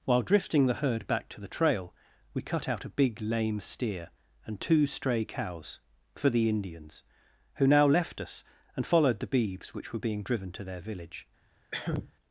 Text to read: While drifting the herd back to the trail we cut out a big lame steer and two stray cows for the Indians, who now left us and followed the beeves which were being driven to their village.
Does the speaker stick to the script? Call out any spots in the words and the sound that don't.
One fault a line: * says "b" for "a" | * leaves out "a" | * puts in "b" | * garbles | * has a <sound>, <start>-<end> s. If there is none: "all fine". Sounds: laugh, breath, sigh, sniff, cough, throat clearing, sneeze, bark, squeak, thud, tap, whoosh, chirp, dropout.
* has a cough, 11.7-12.1 s